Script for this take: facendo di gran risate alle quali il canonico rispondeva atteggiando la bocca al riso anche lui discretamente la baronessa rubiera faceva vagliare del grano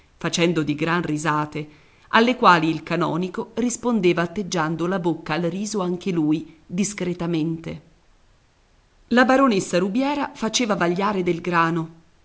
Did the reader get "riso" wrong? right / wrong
right